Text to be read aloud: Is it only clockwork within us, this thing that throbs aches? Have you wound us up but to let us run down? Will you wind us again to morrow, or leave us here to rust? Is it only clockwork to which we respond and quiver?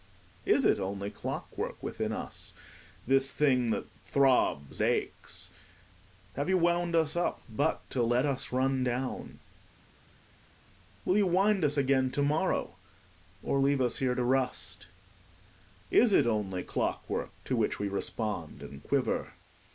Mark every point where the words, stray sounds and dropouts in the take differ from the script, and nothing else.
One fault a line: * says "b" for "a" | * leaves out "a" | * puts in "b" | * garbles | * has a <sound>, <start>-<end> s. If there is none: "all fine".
all fine